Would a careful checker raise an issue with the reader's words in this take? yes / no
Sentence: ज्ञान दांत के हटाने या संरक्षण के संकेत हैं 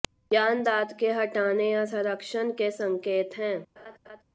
no